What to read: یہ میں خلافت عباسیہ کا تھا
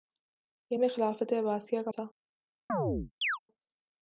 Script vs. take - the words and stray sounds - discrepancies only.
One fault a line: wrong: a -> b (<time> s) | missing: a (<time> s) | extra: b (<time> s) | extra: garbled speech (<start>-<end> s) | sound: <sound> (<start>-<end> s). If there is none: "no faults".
sound: chirp (2.7-3.4 s)